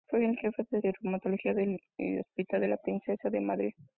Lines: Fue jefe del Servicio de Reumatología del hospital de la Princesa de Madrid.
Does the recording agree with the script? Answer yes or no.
no